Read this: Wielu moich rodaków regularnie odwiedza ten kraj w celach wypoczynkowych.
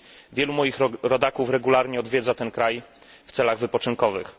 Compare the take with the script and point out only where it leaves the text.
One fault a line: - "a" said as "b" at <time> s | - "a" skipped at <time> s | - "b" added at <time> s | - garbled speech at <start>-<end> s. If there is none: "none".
none